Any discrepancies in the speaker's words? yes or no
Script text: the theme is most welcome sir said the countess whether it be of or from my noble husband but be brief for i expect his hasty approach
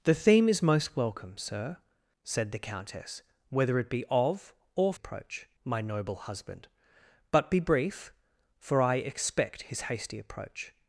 yes